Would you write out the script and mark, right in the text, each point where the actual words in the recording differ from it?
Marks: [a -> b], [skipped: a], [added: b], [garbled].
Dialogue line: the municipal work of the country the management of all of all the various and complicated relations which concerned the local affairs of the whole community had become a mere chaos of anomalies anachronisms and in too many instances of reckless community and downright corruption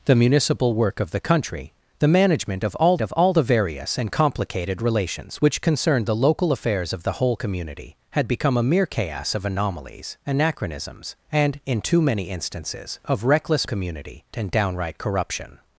the municipal work of the country the management of all of all the various and complicated relations which concerned the local affairs of the whole community had become a mere chaos of anomalies anachronisms and in too many instances of reckless community and downright corruption